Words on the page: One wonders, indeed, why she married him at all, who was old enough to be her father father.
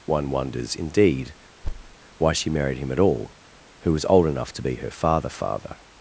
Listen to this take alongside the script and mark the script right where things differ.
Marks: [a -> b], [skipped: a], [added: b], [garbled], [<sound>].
One wonders, indeed, [thud] why she married him at all, who was old enough to be her father father.